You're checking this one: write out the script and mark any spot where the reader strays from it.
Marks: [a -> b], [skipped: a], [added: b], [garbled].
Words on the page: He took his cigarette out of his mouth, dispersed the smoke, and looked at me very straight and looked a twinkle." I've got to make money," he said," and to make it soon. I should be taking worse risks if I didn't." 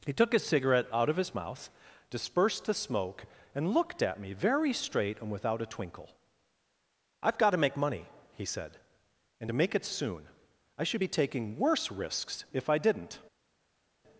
He took his cigarette out of his mouth, dispersed the smoke, and looked at me very straight and [looked -> without] a twinkle." I've got to make money," he said," and to make it soon. I should be taking worse risks if I didn't."